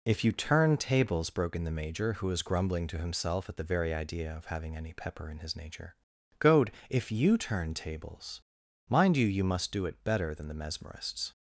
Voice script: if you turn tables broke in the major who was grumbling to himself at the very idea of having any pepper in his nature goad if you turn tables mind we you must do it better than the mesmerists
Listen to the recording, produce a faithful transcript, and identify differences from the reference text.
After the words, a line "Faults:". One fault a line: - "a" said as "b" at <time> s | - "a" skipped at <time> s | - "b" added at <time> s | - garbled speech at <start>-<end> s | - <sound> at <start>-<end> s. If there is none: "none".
if you turn tables broke in the major who was grumbling to himself at the very idea of having any pepper in his nature goad if you turn tables mind you you must do it better than the mesmerists
Faults:
- "we" said as "you" at 9.2 s